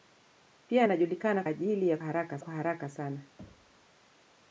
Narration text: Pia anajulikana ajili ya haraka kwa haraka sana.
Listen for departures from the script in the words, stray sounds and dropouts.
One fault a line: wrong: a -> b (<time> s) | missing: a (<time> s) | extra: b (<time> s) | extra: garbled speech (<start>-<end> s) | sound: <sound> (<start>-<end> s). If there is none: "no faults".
sound: thud (3.4-3.9 s)